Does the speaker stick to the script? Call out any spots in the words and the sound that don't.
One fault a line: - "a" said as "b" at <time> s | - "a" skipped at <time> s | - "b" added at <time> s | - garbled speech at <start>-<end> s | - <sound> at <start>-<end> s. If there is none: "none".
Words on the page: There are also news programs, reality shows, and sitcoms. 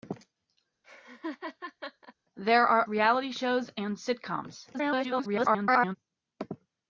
- laugh at 0.8-2.1 s
- "also news programs" skipped at 2.8 s
- garbled speech at 4.7-6.0 s